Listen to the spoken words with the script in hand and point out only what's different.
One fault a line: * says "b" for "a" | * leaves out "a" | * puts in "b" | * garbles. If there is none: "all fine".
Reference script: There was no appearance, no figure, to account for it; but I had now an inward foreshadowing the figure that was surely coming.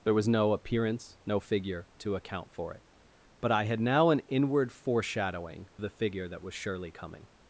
all fine